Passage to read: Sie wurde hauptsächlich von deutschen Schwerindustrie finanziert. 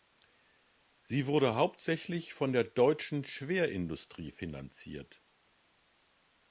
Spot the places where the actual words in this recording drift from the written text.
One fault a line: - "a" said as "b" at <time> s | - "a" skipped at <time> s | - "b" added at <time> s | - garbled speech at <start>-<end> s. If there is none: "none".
- "der" added at 2.5 s